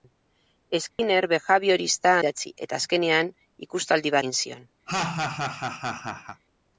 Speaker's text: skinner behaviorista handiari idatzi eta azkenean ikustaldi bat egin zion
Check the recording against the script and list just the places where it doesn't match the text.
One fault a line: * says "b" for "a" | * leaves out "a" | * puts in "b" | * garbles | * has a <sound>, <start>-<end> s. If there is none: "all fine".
* has a dropout, 0.9-1.0 s
* leaves out "handiari"
* leaves out "bat"
* has a laugh, 4.9-6.4 s